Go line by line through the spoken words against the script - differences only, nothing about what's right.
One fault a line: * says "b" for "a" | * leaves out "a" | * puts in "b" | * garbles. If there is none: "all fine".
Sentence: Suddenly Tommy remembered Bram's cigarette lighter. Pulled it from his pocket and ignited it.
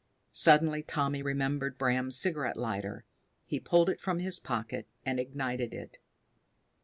* puts in "He"